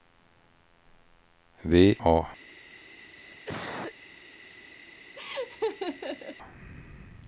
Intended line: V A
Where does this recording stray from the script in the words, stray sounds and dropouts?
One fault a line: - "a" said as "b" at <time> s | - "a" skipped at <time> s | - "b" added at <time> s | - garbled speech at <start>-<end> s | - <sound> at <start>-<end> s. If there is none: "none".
- cough at 3.2-3.9 s
- laugh at 5.1-6.4 s